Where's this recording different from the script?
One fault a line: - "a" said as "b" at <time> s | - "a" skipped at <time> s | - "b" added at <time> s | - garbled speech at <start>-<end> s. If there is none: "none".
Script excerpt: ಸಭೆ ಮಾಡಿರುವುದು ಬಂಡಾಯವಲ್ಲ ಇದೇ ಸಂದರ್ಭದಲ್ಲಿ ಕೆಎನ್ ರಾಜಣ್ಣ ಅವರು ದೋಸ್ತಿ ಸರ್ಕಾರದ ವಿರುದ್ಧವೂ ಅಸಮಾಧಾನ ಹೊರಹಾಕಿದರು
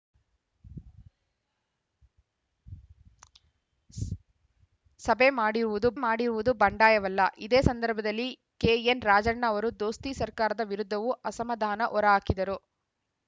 - "ಮಾಡಿರುವುದು" added at 6.0 s